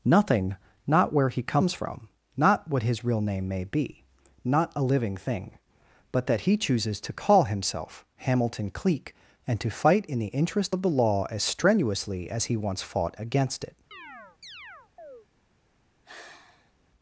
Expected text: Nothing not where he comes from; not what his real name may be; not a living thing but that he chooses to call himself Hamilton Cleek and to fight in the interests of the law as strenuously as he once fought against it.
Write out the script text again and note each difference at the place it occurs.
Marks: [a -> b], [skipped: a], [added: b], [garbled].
Nothing not where he comes from; not what his real name may be; not a living thing but that he chooses to call himself Hamilton Cleek and to fight in the [interests -> interest] of the law as strenuously as he once fought against it.